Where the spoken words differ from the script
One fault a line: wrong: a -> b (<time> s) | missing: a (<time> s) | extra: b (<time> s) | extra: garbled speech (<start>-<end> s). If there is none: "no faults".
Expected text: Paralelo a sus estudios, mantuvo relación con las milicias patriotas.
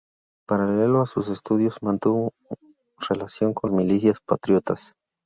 missing: las (3.7 s)